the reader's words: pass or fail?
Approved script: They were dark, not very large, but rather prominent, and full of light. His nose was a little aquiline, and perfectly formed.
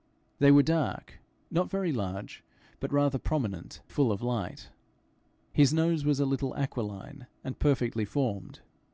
fail